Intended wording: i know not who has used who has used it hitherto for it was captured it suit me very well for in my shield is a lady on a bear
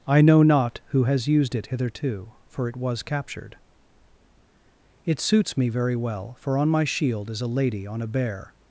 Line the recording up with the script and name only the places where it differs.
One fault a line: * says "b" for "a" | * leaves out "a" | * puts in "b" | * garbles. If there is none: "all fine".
* leaves out "who has used"
* says "suits" for "suit"
* says "on" for "in"